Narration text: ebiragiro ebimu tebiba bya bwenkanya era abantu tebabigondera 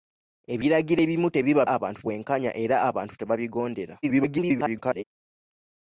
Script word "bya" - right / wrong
wrong